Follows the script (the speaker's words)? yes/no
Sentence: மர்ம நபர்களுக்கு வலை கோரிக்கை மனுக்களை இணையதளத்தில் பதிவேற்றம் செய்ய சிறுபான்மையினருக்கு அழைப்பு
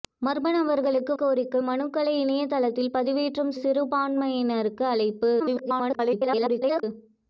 no